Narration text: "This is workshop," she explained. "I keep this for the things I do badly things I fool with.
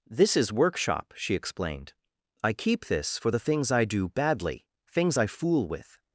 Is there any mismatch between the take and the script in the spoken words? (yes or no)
no